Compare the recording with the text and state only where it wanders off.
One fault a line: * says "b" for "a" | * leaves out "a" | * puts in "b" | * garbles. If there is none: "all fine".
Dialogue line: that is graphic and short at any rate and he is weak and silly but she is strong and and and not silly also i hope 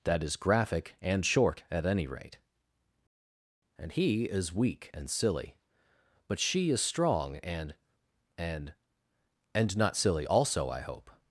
all fine